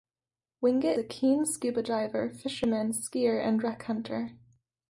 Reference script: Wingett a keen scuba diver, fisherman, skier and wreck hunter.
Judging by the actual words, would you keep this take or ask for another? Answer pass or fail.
pass